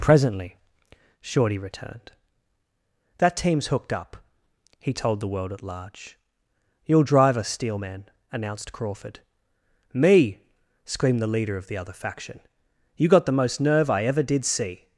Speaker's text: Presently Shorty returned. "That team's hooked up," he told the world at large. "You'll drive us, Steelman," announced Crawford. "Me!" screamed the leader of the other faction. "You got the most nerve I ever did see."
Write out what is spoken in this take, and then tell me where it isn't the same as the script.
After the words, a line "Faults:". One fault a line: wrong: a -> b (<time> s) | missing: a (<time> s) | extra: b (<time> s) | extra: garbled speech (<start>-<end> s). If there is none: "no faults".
Presently Shorty returned. "That team's hooked up," he told the world at large. "You'll drive us, Steelman," announced Crawford. "Me!" screamed the leader of the other faction. "You got the most nerve I ever did see."
Faults:
no faults